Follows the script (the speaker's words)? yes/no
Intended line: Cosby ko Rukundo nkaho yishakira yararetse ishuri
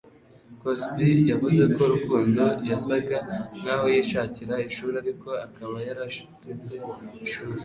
no